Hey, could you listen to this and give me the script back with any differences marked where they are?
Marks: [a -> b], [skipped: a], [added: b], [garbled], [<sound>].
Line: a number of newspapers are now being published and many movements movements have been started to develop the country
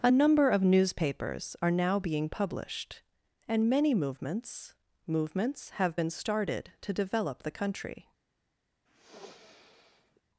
a number of newspapers are now being published and many movements movements have been started to develop the country [sniff]